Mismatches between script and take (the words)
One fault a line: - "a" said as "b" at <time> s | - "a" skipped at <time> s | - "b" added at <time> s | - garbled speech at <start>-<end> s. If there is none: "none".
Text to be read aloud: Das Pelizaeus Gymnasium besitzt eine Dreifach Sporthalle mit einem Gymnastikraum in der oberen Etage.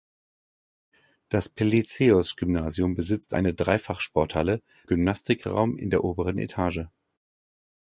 - "mit einem" skipped at 4.6 s